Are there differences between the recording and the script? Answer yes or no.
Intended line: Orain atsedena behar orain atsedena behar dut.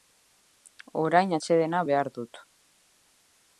yes